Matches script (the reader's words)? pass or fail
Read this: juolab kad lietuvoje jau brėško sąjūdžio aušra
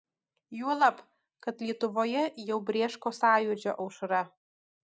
pass